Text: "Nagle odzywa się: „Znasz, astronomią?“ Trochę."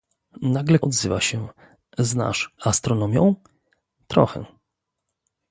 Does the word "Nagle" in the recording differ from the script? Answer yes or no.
no